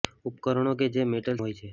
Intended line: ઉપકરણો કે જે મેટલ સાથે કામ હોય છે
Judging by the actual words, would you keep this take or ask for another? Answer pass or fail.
fail